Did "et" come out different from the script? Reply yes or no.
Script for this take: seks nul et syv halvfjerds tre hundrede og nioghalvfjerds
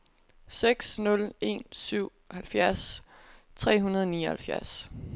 yes